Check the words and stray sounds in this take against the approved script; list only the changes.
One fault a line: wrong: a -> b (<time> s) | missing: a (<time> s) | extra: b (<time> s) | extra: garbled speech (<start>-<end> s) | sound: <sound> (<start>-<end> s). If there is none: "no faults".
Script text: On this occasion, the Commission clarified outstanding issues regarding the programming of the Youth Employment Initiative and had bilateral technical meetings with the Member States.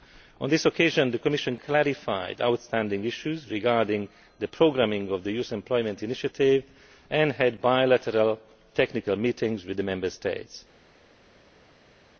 no faults